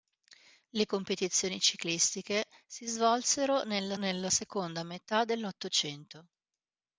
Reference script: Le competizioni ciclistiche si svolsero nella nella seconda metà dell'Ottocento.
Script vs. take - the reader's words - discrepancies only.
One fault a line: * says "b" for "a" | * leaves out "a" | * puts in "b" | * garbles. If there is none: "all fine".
all fine